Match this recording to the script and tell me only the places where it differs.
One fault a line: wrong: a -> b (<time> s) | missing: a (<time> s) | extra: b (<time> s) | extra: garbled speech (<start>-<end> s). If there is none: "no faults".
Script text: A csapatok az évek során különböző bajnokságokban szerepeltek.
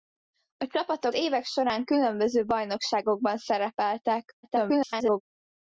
missing: az (1.1 s)
extra: garbled speech (4.4-5.2 s)